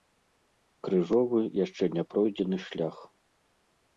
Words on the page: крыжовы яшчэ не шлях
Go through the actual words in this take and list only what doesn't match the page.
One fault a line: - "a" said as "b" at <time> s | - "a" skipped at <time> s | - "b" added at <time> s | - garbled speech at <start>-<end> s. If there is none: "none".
- "пройдзены" added at 2.1 s